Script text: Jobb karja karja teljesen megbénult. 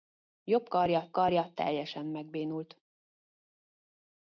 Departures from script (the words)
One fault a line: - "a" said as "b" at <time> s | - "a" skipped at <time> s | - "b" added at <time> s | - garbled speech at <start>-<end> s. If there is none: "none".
none